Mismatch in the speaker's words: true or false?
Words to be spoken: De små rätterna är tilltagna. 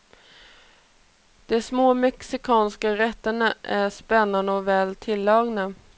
true